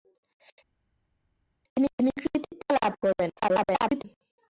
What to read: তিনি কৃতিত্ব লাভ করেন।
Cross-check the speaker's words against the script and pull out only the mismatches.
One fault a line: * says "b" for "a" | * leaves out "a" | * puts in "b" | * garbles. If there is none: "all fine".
* puts in "তিনি"
* garbles